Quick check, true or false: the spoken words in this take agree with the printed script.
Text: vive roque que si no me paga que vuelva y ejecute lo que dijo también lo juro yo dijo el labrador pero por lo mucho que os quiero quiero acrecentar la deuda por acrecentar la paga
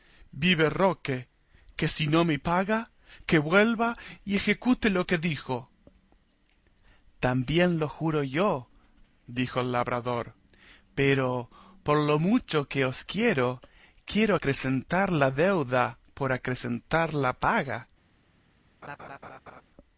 true